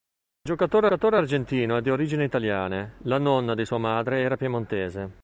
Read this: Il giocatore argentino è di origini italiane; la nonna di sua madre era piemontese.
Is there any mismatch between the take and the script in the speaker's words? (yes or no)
yes